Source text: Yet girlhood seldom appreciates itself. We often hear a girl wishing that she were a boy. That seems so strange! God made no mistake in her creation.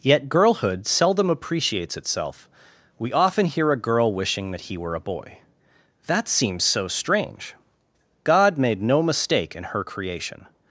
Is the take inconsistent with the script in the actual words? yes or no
yes